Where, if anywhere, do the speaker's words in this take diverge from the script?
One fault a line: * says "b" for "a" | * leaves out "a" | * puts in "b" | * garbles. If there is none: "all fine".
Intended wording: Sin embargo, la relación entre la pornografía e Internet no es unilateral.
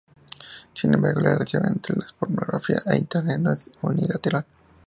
all fine